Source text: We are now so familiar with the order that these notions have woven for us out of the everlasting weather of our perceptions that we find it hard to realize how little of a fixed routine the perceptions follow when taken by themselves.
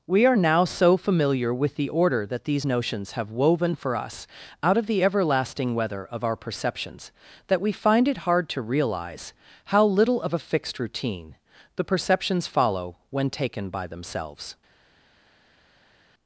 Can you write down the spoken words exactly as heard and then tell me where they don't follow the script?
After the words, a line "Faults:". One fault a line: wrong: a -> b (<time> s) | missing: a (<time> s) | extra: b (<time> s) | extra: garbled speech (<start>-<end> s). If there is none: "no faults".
We are now so familiar with the order that these notions have woven for us out of the everlasting weather of our perceptions that we find it hard to realize how little of a fixed routine the perceptions follow when taken by themselves.
Faults:
no faults